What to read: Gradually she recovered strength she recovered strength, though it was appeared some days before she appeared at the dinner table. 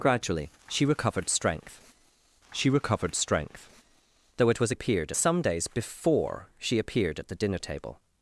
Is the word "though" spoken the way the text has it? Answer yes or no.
yes